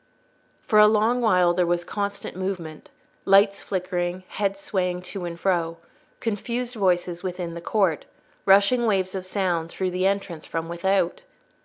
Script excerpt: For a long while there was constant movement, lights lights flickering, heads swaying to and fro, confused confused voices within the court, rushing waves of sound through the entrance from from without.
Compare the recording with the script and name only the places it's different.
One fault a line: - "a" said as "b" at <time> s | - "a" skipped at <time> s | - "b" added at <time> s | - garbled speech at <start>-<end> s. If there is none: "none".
- "lights" skipped at 3.6 s
- "confused" skipped at 6.7 s
- "from" skipped at 10.7 s